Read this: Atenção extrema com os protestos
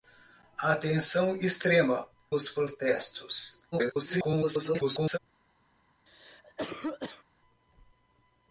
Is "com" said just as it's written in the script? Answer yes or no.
no